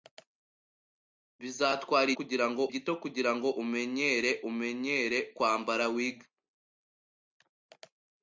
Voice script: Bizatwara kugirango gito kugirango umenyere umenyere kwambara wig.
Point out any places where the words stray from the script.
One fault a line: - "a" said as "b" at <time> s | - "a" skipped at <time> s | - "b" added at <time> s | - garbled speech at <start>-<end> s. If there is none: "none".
none